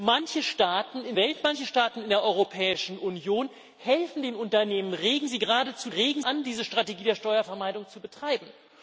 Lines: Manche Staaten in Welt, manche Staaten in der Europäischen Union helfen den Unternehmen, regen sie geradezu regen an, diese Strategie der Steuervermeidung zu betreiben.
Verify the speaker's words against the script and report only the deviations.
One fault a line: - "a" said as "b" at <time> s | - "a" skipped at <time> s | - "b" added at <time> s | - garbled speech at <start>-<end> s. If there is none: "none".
none